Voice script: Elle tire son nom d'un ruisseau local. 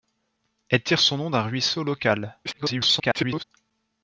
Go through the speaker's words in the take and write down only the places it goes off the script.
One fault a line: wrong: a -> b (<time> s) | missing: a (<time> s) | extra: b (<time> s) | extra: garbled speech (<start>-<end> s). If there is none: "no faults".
extra: garbled speech (2.4-3.4 s)